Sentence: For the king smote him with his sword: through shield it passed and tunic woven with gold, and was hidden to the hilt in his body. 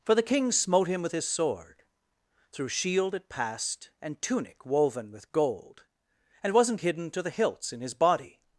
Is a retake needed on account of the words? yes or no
yes